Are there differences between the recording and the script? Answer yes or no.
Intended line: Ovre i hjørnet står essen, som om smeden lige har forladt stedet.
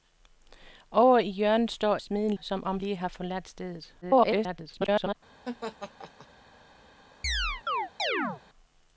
yes